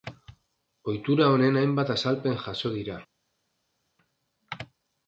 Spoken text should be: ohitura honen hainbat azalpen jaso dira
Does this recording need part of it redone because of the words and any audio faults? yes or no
no